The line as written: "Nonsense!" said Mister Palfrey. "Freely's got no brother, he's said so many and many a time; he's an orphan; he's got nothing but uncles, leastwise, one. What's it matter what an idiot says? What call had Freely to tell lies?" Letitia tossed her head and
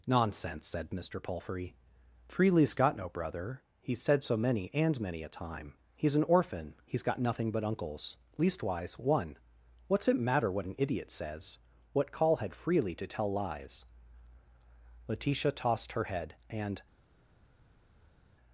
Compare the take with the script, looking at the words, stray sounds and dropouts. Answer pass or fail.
pass